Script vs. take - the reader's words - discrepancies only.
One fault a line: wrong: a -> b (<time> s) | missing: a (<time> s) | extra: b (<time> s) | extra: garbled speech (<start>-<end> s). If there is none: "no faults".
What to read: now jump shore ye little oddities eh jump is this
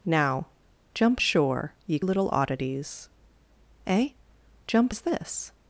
no faults